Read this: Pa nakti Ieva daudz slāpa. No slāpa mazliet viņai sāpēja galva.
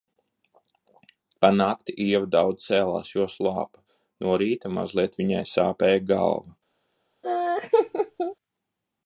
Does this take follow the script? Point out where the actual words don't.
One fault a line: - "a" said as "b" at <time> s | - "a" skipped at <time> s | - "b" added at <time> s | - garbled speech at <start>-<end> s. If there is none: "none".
- "cēlās jo" added at 2.7 s
- "slāpa" said as "rīta" at 4.4 s